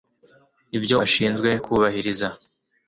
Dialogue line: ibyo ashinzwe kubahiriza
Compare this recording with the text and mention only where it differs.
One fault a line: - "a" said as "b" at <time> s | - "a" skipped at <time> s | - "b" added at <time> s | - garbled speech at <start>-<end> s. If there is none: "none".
none